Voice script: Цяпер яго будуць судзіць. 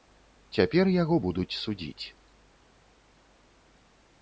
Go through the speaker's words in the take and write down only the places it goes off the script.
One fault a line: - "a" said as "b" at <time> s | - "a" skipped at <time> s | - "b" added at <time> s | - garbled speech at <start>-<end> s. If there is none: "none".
none